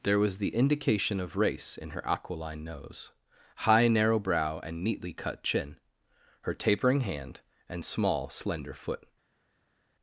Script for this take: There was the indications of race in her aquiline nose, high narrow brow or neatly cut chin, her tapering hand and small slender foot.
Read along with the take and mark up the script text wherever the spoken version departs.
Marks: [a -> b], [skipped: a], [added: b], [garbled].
There was the [indications -> indication] of race in her aquiline nose, high narrow brow [or -> and] neatly cut chin, her tapering hand and small slender foot.